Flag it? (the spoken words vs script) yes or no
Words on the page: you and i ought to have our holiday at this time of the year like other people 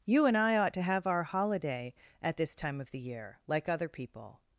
no